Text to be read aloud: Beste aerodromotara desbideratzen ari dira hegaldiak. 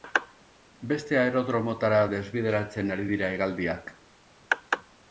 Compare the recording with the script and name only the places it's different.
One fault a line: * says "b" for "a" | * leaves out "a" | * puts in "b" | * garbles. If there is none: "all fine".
all fine